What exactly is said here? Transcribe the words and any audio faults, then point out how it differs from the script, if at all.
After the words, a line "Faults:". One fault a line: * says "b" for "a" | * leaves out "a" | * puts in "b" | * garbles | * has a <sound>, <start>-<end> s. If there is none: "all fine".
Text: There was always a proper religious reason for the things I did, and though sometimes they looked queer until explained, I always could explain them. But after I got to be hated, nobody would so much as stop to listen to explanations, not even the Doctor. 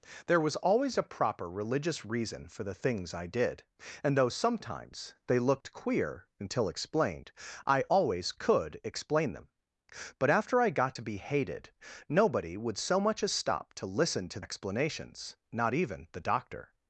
There was always a proper religious reason for the things I did, and though sometimes they looked queer until explained, I always could explain them. But after I got to be hated, nobody would so much as stop to listen to explanations, not even the Doctor.
Faults:
all fine